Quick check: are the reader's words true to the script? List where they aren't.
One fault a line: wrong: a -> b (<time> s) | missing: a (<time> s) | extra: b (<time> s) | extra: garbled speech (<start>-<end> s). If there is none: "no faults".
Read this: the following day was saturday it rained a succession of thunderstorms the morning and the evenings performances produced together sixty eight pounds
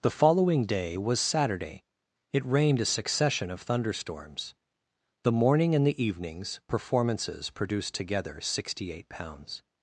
no faults